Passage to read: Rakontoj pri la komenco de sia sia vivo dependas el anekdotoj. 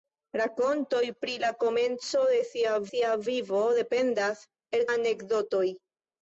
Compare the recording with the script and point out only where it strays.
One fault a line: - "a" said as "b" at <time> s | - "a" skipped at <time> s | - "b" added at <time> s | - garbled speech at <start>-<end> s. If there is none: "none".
none